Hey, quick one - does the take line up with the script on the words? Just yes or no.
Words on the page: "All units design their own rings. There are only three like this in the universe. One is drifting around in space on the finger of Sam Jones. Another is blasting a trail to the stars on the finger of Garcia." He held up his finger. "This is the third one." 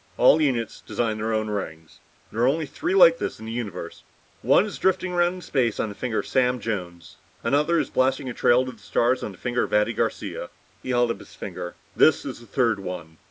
no